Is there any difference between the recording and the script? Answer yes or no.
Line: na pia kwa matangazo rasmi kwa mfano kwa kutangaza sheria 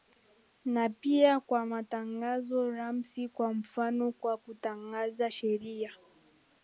no